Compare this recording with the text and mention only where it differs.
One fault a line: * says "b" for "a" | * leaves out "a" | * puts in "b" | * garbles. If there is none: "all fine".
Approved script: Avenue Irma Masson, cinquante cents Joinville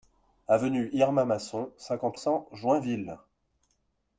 all fine